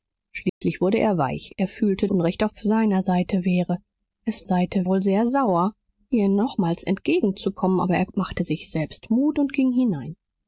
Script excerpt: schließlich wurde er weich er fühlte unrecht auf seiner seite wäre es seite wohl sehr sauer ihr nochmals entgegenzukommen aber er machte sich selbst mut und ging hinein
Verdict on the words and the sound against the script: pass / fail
fail